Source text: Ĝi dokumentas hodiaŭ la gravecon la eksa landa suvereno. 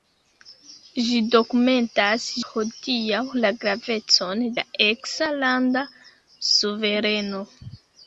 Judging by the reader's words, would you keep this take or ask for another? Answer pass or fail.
pass